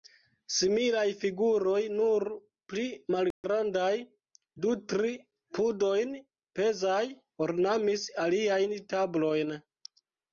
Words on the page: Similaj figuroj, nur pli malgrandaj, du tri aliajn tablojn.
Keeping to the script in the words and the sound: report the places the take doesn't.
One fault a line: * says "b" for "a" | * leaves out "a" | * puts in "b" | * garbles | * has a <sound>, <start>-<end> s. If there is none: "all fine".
* has a dropout, 3.3-3.4 s
* puts in "pudojn pezaj ornamis"